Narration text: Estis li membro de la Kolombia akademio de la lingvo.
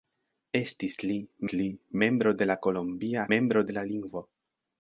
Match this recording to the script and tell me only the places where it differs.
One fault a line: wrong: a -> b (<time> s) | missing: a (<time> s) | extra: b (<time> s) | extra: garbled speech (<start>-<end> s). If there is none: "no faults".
extra: li (1.5 s)
wrong: akademio -> membro (3.3 s)